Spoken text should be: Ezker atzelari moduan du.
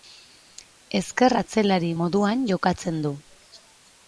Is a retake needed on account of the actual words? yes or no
yes